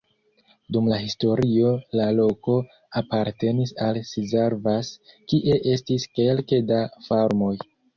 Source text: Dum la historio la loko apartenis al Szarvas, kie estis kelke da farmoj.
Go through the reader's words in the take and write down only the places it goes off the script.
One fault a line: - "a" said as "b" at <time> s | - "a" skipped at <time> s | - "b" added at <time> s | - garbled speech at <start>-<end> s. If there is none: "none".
none